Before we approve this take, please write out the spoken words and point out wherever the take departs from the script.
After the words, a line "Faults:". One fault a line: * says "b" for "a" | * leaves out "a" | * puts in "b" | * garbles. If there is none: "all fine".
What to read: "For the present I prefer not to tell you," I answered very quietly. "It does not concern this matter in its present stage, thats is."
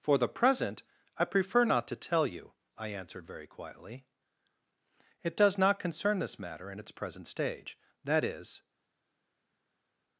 "For the present I prefer not to tell you," I answered very quietly. "It does not concern this matter in its present stage, that is."
Faults:
* says "that" for "thats"